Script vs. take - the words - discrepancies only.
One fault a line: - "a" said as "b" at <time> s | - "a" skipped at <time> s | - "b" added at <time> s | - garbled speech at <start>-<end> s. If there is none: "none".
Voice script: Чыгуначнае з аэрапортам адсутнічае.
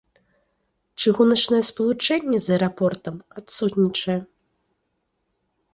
- "спалучэнне" added at 1.7 s